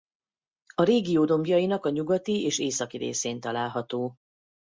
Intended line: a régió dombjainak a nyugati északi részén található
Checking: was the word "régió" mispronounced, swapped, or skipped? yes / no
no